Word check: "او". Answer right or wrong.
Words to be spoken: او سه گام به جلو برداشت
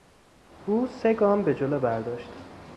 right